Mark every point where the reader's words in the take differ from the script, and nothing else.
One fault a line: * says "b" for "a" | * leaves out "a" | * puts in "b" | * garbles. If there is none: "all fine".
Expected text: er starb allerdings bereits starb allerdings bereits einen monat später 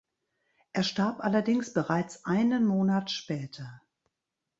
* leaves out "starb allerdings bereits"